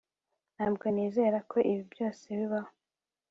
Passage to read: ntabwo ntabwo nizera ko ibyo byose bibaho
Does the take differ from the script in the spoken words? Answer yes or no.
yes